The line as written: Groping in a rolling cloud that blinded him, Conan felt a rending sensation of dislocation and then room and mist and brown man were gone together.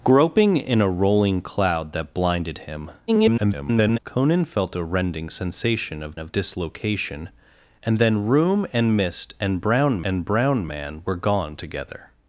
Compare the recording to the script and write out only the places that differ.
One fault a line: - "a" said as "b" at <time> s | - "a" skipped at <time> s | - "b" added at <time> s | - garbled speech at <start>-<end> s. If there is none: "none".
- garbled speech at 3.1-4.0 s
- "of" added at 6.2 s
- "and brown" added at 10.0 s